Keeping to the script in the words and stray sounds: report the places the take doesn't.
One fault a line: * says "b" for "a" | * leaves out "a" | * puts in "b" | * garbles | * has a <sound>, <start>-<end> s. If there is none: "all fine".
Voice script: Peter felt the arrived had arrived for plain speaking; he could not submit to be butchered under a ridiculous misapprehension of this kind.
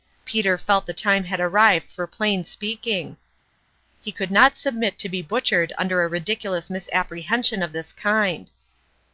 * says "time" for "arrived"